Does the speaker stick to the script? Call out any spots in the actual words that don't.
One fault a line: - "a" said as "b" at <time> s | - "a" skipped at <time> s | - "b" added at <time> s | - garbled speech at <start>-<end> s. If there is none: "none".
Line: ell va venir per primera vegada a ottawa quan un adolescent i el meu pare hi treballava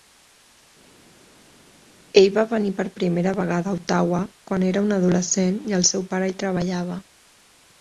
- "era" added at 4.7 s
- "meu" said as "seu" at 5.9 s